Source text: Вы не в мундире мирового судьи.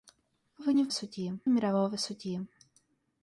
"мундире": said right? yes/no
no